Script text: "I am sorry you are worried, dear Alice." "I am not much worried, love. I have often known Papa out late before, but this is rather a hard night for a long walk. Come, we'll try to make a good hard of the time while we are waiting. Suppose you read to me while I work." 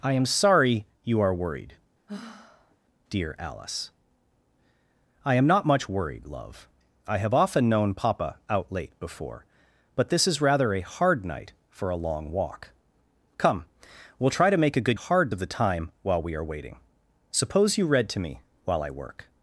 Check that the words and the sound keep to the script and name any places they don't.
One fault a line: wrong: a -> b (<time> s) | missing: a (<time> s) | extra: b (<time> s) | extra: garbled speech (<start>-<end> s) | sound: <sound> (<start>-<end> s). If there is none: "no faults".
sound: sigh (2.1-2.8 s)